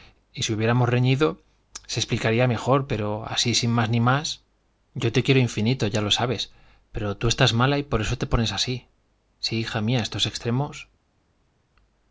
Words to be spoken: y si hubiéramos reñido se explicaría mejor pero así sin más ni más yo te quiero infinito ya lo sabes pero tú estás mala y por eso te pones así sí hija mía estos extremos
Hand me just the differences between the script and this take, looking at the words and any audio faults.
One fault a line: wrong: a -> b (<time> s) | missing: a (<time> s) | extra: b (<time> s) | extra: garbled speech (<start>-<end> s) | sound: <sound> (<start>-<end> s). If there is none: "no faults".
no faults